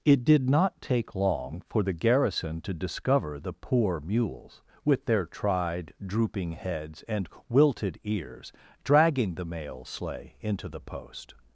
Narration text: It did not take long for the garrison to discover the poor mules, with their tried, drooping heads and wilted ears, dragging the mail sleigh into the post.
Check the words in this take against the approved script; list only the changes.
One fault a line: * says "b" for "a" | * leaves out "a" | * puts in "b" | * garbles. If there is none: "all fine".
all fine